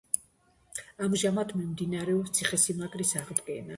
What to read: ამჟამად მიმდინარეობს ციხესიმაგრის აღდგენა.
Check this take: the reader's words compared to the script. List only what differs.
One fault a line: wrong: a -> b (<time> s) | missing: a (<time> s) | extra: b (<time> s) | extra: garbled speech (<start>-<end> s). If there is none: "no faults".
no faults